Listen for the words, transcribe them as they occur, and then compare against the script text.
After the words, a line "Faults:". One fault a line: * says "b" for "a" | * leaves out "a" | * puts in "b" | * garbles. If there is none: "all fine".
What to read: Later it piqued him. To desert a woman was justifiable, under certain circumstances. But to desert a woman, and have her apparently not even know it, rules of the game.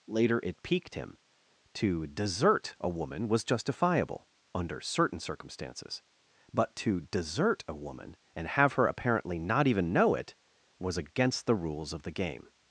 Later it piqued him. To desert a woman was justifiable, under certain circumstances. But to desert a woman, and have her apparently not even know it, was against the rules of the game.
Faults:
* puts in "was against the"